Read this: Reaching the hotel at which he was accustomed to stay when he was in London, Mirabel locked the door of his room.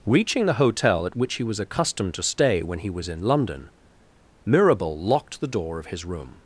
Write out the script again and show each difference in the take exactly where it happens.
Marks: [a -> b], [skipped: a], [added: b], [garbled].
Reaching the hotel at which he was accustomed to stay when he was in London, Mirabel locked the door of his room.